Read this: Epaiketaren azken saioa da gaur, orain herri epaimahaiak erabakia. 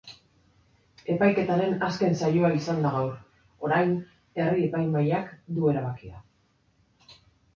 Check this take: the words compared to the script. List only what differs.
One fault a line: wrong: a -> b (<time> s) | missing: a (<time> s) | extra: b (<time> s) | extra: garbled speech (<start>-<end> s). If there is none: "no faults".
extra: izan (2.6 s)
extra: du (5.6 s)